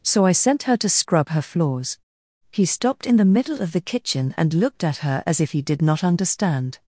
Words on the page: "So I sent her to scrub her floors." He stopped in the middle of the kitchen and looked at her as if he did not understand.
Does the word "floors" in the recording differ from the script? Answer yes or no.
no